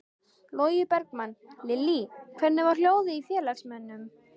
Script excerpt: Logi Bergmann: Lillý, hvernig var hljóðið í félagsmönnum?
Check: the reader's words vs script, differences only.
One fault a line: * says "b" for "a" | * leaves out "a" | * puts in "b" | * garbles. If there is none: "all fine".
all fine